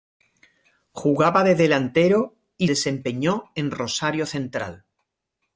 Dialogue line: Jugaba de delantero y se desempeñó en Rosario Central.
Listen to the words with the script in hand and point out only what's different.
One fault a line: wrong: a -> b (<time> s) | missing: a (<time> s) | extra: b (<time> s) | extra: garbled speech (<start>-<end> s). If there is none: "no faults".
missing: se (2.7 s)